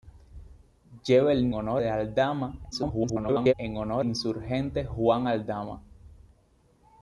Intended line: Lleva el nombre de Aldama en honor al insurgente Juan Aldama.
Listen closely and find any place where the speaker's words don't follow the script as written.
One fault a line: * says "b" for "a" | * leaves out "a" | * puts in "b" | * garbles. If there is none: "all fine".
* says "honor" for "nombre"
* garbles
* leaves out "al"